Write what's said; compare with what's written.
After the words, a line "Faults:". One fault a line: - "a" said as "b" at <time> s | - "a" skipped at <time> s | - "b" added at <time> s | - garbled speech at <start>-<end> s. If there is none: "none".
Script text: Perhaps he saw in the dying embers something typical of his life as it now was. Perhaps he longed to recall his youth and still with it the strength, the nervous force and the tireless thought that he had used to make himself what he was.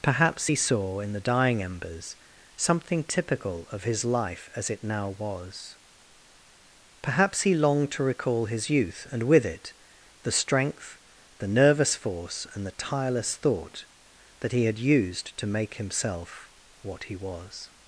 Perhaps he saw in the dying embers something typical of his life as it now was. Perhaps he longed to recall his youth and with it the strength, the nervous force and the tireless thought that he had used to make himself what he was.
Faults:
- "still" skipped at 9.2 s